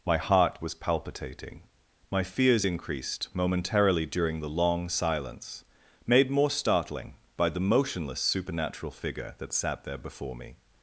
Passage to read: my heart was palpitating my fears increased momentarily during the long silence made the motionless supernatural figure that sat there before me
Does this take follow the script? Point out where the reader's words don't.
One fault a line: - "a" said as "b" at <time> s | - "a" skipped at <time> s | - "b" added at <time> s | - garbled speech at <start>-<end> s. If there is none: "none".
- "more startling by" added at 6.3 s